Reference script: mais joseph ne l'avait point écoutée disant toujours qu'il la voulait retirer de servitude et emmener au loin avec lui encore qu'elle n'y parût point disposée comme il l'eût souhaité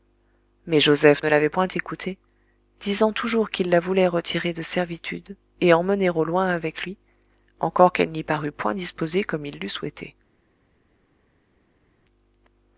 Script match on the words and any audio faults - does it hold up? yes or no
yes